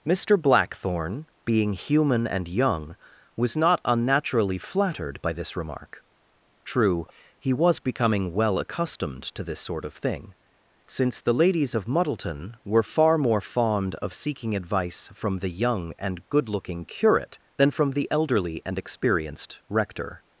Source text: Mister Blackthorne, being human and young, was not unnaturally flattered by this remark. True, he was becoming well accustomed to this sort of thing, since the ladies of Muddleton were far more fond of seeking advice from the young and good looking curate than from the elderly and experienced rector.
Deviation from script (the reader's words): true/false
false